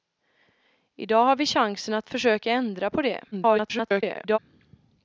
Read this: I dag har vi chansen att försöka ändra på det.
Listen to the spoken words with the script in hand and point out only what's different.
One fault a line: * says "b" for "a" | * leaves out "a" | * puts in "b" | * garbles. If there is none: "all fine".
* garbles